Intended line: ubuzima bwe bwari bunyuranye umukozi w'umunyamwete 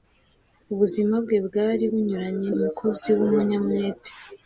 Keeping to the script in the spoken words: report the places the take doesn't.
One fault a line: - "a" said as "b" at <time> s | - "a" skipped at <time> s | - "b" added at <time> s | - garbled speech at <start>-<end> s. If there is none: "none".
none